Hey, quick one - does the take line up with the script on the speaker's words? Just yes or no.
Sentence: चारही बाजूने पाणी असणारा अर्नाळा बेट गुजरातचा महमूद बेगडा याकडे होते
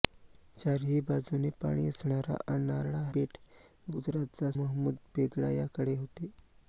yes